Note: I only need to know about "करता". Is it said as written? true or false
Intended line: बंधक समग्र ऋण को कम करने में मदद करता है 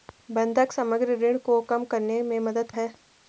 false